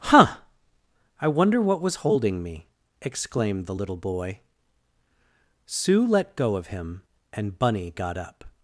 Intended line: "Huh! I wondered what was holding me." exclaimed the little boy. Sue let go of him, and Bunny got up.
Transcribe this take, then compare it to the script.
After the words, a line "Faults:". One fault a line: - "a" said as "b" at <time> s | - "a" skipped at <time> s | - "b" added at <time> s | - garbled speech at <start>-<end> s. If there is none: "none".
"Huh! I wonder what was holding me." exclaimed the little boy. Sue let go of him, and Bunny got up.
Faults:
- "wondered" said as "wonder" at 1.3 s